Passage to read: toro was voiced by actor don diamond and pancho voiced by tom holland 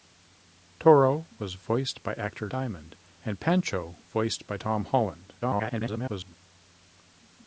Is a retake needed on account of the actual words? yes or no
yes